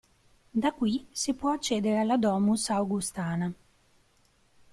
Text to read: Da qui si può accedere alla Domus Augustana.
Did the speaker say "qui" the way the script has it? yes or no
yes